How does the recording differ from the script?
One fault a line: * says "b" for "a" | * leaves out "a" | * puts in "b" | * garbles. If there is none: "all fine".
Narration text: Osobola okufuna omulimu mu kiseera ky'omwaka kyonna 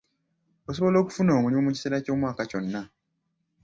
all fine